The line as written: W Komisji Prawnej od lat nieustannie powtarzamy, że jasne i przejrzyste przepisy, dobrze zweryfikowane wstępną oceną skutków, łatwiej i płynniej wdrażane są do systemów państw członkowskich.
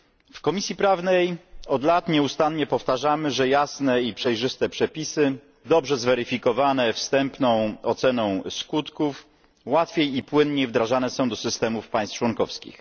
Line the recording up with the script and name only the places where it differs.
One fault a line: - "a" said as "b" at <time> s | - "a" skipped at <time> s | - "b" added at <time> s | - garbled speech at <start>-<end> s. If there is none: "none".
none